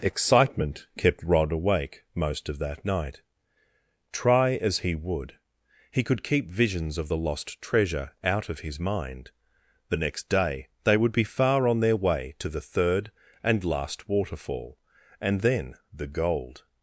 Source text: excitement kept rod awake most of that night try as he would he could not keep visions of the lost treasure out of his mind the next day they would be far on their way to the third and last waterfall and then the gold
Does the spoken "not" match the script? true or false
false